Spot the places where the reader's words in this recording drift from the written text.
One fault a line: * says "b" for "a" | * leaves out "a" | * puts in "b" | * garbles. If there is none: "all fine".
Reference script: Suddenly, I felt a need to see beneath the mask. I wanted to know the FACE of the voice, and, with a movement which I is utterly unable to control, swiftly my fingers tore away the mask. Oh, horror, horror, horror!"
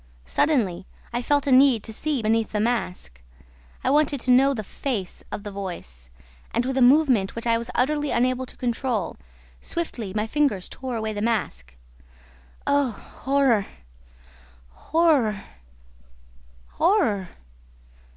* says "was" for "is"